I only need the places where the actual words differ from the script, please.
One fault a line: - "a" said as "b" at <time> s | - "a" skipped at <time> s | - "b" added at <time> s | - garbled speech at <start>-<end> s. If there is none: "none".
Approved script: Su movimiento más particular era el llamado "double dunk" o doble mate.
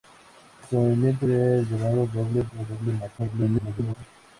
- "más particular" skipped at 1.3 s
- "dunk" skipped at 2.4 s
- garbled speech at 3.2-3.9 s